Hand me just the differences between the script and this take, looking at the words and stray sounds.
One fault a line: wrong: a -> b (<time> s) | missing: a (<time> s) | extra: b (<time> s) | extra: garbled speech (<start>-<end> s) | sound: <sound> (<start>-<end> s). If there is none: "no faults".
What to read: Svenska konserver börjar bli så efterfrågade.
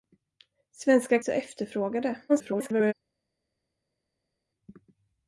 missing: konserver börjar bli (1.2 s)
extra: garbled speech (2.3-2.9 s)